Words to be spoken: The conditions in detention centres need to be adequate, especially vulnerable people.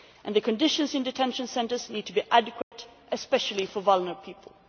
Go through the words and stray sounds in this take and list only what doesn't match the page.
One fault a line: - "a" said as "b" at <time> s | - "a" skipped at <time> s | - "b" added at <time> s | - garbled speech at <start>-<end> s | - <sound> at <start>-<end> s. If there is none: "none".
- dropout at 2.6-2.7 s
- "for" added at 3.7 s